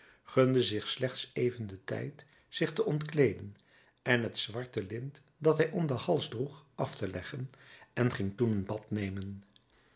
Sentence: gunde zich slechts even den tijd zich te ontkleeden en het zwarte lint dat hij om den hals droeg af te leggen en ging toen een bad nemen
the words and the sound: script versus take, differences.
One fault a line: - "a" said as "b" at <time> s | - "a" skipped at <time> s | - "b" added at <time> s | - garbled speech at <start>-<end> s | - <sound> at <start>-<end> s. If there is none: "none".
none